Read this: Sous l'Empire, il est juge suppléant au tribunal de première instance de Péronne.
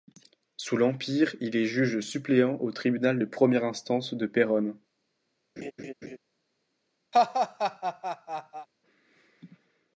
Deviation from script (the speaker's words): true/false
false